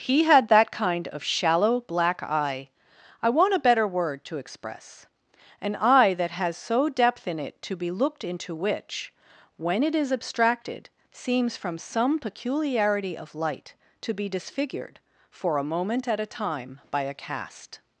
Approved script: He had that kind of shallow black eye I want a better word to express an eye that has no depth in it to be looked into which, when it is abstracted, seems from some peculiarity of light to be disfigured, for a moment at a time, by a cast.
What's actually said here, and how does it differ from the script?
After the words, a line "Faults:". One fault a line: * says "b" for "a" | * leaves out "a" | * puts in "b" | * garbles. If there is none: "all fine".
He had that kind of shallow black eye I want a better word to express an eye that has so depth in it to be looked into which, when it is abstracted, seems from some peculiarity of light to be disfigured, for a moment at a time, by a cast.
Faults:
* says "so" for "no"